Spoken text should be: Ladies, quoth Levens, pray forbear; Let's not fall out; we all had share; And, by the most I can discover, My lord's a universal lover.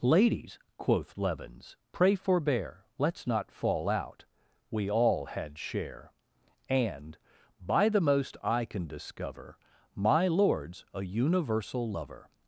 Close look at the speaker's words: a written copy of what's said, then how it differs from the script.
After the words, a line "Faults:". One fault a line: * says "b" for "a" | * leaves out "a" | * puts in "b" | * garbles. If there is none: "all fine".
Ladies, quoth Levens, pray forbear; Let's not fall out; we all had share; And, by the most I can discover, My lord's a universal lover.
Faults:
all fine